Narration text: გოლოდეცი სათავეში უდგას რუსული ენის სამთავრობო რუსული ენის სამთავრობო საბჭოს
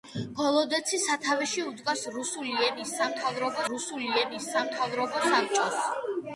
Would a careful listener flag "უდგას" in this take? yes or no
no